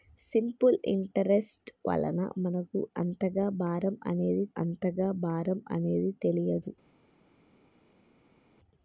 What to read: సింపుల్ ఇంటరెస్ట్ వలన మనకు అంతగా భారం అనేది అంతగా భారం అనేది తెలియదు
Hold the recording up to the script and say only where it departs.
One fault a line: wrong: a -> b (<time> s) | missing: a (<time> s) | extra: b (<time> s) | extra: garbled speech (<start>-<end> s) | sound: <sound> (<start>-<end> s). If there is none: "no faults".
no faults